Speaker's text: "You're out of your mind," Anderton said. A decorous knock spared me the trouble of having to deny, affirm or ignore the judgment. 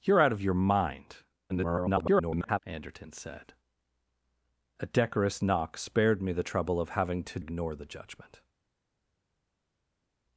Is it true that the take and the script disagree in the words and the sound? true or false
true